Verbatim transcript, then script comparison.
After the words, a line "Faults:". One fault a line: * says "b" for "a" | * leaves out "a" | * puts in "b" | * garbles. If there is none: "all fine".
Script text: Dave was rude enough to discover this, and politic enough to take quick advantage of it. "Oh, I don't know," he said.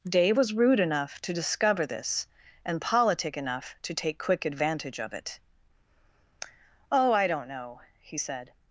Dave was rude enough to discover this, and politic enough to take quick advantage of it. "Oh, I don't know," he said.
Faults:
all fine